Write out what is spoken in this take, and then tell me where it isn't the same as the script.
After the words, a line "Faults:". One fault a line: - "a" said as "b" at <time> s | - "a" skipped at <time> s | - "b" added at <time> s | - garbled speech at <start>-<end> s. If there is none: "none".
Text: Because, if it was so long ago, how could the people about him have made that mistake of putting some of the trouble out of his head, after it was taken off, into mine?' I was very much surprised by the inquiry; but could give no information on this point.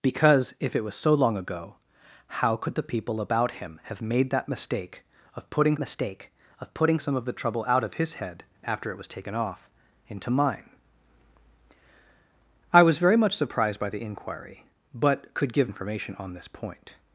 Because, if it was so long ago, how could the people about him have made that mistake of putting mistake of putting some of the trouble out of his head, after it was taken off, into mine?' I was very much surprised by the inquiry; but could give information on this point.
Faults:
- "mistake of putting" added at 5.8 s
- "no" skipped at 15.7 s